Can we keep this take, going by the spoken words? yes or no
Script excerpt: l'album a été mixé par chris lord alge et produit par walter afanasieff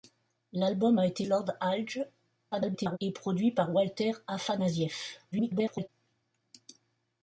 no